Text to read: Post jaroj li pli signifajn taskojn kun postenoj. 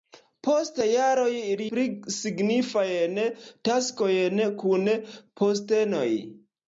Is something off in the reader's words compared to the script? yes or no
no